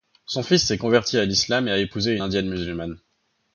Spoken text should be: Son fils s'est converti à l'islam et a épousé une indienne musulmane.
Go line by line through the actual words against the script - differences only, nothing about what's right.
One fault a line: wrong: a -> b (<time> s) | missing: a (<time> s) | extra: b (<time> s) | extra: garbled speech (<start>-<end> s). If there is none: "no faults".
missing: une (2.2 s)